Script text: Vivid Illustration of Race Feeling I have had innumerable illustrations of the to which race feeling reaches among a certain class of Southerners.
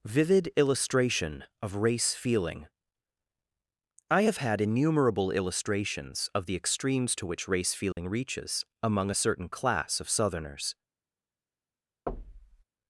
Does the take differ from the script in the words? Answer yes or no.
yes